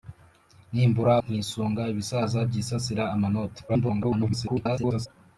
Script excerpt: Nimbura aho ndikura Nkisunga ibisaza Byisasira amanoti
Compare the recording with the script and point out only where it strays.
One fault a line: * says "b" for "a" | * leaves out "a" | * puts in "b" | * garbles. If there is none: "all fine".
* leaves out "aho ndikura"
* garbles